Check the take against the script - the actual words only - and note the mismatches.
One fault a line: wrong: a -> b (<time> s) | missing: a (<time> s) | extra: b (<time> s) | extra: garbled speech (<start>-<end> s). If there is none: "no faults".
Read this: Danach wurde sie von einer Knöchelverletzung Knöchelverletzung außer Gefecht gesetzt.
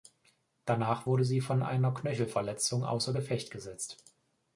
missing: Knöchelverletzung (2.8 s)